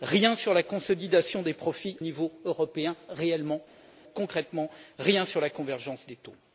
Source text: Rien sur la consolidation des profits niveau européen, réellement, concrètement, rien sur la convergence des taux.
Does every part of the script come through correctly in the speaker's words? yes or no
yes